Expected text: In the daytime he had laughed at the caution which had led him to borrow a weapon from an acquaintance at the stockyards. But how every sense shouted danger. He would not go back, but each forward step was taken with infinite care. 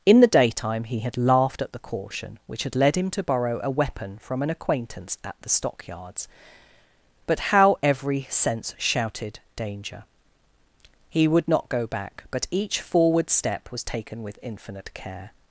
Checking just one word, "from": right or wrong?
right